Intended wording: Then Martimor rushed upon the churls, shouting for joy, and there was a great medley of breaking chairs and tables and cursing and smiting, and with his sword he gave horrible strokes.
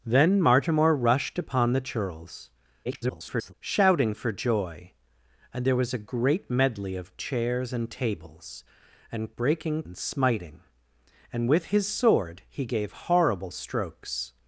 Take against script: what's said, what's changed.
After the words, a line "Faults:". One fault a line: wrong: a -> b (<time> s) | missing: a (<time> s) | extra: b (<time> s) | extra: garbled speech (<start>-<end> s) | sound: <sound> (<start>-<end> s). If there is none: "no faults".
Then Martimor rushed upon the churls, [garbled] shouting for joy, and there was a great medley of chairs and tables and breaking and smiting, and with his sword he gave horrible strokes.
Faults:
extra: garbled speech (2.8-3.5 s)
missing: breaking (7.1 s)
wrong: cursing -> breaking (9.4 s)